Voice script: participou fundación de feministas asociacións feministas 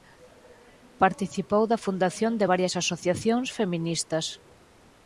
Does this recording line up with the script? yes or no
no